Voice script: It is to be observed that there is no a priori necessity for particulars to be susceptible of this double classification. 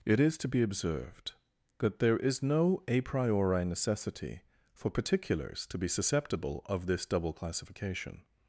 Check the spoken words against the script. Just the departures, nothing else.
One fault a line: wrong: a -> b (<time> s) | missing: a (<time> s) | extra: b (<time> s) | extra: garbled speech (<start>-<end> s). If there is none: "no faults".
no faults